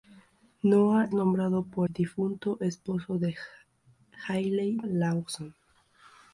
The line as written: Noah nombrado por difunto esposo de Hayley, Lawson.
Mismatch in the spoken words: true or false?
false